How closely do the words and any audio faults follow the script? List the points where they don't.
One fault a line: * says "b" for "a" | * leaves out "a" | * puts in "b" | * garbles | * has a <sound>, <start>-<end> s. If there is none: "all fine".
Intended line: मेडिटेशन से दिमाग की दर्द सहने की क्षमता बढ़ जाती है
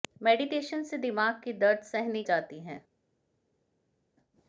* leaves out "की क्षमता बढ़"